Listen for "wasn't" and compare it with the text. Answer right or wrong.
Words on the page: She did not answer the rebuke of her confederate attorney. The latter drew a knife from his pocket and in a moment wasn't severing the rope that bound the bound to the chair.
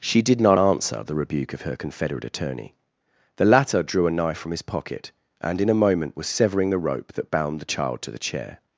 wrong